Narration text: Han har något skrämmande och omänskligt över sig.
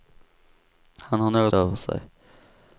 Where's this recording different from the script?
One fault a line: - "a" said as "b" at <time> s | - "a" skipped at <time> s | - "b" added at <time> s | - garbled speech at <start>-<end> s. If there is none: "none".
- "skrämmande och omänskligt" skipped at 1.5 s